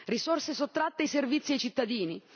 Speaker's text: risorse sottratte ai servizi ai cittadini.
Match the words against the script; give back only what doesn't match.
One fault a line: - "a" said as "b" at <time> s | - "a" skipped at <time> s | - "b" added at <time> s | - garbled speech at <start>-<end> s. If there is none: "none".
none